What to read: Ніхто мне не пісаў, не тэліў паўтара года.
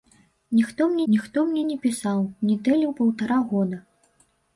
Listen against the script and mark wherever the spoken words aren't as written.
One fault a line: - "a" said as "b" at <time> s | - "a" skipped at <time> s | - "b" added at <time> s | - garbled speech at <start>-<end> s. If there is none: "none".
- "ніхто мне" added at 1.1 s